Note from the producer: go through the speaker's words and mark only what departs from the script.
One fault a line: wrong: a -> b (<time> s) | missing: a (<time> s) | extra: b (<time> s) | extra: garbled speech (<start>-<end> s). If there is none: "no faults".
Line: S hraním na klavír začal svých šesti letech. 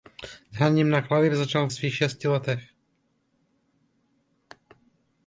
no faults